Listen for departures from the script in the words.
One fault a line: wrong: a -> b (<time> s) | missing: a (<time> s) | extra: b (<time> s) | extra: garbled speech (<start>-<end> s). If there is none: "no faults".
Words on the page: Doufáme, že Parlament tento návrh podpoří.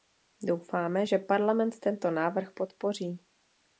no faults